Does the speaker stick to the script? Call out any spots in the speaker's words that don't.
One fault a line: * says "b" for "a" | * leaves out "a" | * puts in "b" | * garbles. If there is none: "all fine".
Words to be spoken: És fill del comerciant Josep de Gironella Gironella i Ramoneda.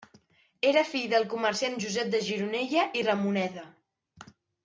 * says "Era" for "És"
* leaves out "Gironella"